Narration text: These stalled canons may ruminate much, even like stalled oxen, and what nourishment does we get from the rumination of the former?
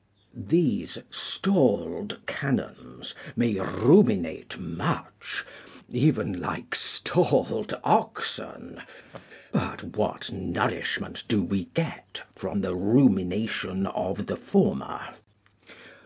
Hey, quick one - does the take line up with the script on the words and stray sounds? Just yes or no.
no